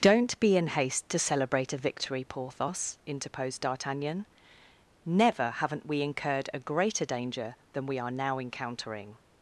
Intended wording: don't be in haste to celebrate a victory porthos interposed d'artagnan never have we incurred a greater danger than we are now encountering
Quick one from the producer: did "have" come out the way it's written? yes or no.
no